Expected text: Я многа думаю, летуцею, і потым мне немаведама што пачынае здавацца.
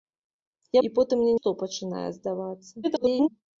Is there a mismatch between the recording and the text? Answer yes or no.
yes